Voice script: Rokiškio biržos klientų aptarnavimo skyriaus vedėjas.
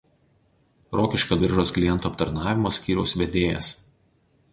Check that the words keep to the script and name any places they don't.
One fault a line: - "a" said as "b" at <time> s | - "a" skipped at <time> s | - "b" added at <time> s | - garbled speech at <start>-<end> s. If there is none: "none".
none